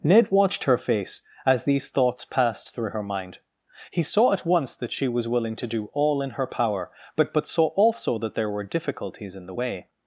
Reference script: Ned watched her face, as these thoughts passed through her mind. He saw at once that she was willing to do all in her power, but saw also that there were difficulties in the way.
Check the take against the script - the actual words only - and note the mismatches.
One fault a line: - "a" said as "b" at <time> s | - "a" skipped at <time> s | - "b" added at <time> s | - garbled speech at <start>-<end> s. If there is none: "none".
- "but" added at 7.3 s